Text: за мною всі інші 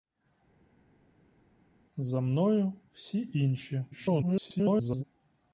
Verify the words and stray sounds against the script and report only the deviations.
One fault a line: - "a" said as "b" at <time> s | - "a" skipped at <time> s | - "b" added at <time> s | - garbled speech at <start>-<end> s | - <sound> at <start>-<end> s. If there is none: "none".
- garbled speech at 3.9-5.0 s